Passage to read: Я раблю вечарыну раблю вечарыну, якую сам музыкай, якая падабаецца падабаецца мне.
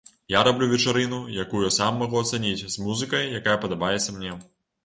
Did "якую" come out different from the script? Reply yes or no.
yes